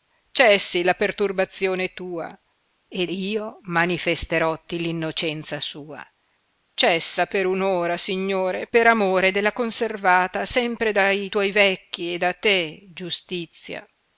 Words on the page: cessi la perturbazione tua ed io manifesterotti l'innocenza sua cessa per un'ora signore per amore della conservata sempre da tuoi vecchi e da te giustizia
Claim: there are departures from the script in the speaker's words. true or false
false